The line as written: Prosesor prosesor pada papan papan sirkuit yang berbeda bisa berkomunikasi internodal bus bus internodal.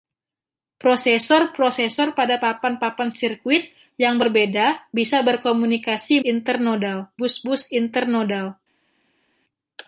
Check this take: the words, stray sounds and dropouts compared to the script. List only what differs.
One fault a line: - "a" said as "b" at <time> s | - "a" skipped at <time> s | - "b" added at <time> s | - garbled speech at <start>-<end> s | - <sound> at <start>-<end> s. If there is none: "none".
none